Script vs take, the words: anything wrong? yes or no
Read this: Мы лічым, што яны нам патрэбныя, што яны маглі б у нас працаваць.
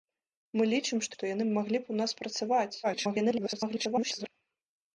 yes